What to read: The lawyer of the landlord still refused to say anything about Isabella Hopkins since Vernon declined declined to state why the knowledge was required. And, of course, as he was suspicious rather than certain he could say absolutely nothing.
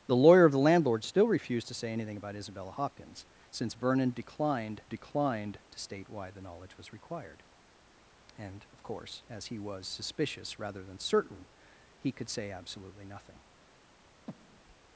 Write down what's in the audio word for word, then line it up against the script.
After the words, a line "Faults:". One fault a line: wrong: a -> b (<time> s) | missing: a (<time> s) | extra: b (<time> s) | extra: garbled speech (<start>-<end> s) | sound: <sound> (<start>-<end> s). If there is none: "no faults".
The lawyer of the landlord still refused to say anything about Isabella Hopkins since Vernon declined declined to state why the knowledge was required. And, of course, as he was suspicious rather than certain he could say absolutely nothing.
Faults:
sound: breath (14.3-14.8 s)